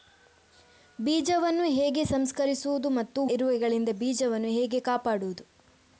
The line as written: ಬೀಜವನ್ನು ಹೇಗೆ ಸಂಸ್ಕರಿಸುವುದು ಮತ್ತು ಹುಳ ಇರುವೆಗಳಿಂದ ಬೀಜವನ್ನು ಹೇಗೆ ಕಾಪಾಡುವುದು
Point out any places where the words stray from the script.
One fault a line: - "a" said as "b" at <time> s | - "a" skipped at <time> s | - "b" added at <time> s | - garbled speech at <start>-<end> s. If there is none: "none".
- "ಹುಳ" skipped at 3.2 s